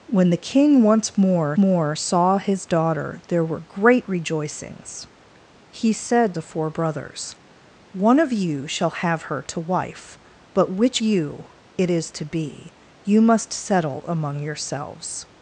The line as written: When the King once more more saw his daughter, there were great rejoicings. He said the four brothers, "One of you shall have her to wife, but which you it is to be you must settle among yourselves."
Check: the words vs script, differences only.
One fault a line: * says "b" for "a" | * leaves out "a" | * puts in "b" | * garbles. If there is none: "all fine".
all fine